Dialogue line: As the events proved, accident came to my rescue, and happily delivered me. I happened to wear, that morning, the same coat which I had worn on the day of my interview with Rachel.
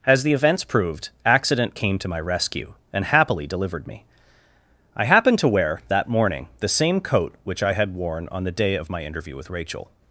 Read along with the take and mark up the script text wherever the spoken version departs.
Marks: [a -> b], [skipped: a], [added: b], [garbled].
As the events proved, accident came to my rescue, and happily delivered me. I happened to wear, that morning, the same coat which I had worn on the day of my interview with Rachel.